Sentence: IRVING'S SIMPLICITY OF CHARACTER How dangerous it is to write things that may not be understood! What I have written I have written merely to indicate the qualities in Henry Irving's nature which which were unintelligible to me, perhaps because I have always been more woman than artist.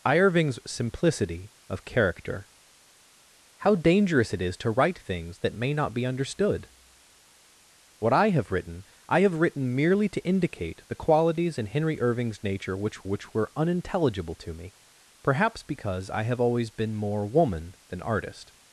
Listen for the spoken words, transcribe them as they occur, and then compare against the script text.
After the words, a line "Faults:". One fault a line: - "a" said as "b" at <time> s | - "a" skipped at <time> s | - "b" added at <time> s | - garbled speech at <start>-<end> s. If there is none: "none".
IRVING'S SIMPLICITY OF CHARACTER How dangerous it is to write things that may not be understood! What I have written I have written merely to indicate the qualities in Henry Irving's nature which which were unintelligible to me, perhaps because I have always been more woman than artist.
Faults:
none